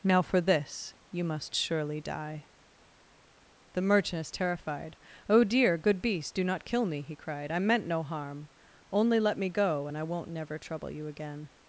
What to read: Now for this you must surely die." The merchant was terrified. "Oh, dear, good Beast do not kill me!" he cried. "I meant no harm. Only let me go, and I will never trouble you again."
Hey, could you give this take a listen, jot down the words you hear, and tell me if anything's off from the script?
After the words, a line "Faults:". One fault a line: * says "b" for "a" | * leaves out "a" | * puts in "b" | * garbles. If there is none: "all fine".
Now for this you must surely die." The merchant is terrified. "Oh, dear, good Beast do not kill me!" he cried. "I meant no harm. Only let me go, and I won't never trouble you again."
Faults:
* says "is" for "was"
* says "won't" for "will"